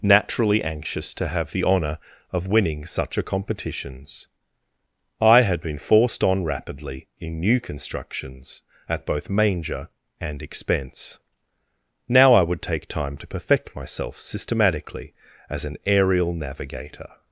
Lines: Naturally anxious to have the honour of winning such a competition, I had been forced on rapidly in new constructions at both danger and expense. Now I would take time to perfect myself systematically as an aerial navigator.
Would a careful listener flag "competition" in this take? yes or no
yes